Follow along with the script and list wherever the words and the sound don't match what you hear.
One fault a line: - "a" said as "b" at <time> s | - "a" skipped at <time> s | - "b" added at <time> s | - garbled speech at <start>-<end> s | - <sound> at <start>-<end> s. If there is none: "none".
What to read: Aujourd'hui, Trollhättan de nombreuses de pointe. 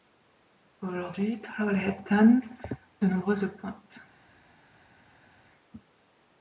none